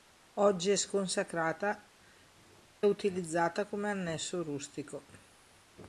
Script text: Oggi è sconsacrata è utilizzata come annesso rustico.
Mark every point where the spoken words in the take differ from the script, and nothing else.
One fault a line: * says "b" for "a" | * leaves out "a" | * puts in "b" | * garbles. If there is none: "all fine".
* leaves out "è"